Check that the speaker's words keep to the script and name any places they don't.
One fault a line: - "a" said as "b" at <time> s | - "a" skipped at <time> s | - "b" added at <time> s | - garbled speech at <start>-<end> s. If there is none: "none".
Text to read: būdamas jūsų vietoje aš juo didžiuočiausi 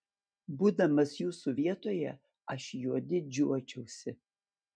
none